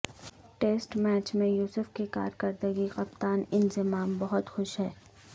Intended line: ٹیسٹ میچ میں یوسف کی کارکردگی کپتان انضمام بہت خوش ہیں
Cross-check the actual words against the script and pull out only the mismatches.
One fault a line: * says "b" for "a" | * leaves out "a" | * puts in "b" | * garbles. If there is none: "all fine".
all fine